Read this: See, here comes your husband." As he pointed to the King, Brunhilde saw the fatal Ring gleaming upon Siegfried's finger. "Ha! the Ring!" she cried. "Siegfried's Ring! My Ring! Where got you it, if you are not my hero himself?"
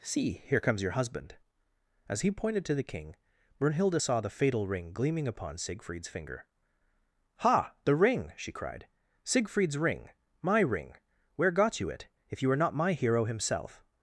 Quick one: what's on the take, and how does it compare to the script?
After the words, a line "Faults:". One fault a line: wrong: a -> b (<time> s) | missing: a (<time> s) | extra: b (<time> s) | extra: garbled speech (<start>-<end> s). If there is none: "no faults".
See, here comes your husband." As he pointed to the King, Brunhilde saw the fatal Ring gleaming upon Siegfried's finger. "Ha! the Ring!" she cried. "Siegfried's Ring! My Ring! Where got you it, if you are not my hero himself?"
Faults:
no faults